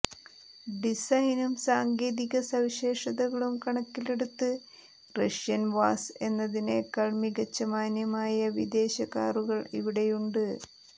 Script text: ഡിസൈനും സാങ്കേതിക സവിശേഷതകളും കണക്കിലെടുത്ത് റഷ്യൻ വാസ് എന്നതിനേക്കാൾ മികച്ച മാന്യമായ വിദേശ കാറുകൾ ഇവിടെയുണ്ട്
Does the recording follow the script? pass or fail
pass